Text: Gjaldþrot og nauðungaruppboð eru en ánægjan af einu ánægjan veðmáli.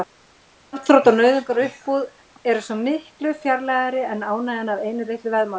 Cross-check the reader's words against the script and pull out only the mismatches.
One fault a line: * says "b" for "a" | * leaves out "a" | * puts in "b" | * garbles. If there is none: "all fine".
* puts in "svo miklu fjarlægari"
* says "litlu" for "ánægjan"